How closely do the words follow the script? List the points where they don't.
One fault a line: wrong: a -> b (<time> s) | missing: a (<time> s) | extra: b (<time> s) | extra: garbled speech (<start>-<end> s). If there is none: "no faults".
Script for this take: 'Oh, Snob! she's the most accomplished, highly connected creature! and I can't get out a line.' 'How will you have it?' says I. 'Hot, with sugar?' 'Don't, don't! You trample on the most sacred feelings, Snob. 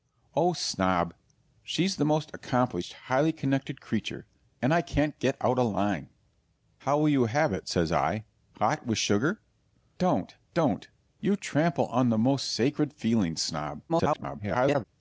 extra: garbled speech (13.9-14.8 s)